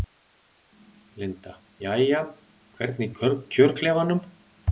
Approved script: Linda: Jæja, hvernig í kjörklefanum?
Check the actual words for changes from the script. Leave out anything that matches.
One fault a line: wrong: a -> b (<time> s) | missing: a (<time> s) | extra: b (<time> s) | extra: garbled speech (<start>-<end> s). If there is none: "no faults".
no faults